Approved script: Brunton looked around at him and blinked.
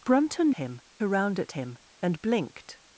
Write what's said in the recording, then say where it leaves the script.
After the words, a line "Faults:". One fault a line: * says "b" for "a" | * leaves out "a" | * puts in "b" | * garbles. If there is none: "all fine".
Brunton him around at him and blinked.
Faults:
* says "him" for "looked"